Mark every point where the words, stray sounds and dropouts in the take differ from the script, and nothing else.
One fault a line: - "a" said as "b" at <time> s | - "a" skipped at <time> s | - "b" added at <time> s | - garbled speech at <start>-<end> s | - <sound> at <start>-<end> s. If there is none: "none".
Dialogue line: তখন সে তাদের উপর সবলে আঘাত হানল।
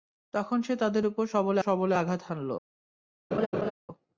- "সবলে" added at 1.6 s
- laugh at 3.3-3.7 s